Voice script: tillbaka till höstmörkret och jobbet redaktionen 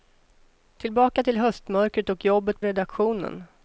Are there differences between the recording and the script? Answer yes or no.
no